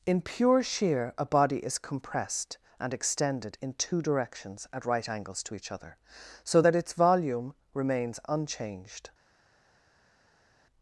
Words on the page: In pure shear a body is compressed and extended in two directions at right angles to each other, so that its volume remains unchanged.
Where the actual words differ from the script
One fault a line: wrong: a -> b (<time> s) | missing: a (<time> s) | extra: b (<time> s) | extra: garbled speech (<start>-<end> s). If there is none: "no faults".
no faults